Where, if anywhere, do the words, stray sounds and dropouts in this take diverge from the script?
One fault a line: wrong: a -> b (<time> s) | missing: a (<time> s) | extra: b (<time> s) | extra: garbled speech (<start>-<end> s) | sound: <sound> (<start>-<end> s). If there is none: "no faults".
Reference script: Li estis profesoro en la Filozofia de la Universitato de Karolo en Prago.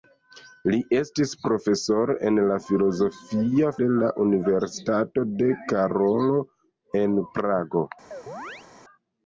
sound: chirp (8.1-8.7 s)